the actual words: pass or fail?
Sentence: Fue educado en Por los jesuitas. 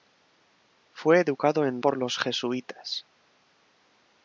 pass